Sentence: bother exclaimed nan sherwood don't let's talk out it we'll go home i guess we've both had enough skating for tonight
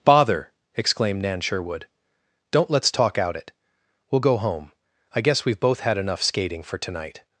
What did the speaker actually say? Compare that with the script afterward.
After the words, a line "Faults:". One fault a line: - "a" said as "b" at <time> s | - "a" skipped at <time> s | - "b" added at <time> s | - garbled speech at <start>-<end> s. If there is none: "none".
bother exclaimed nan sherwood don't let's talk out it we'll go home i guess we've both had enough skating for tonight
Faults:
none